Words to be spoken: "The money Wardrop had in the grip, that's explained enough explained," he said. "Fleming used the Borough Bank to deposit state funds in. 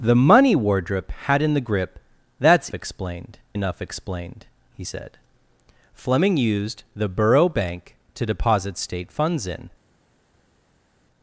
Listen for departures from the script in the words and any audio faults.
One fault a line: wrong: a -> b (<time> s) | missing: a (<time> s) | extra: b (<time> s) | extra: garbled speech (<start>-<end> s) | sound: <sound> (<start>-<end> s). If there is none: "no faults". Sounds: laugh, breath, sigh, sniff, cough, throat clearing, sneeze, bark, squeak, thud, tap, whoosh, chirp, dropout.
no faults